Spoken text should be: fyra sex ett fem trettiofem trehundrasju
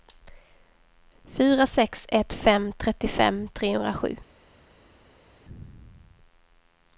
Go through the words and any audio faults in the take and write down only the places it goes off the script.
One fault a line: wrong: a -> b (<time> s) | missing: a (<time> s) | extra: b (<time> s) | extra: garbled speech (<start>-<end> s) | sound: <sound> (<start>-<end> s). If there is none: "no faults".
no faults